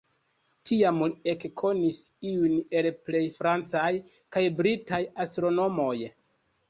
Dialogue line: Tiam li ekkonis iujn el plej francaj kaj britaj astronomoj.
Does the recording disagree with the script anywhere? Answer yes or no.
no